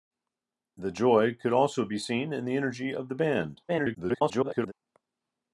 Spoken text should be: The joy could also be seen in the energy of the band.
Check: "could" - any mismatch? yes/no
no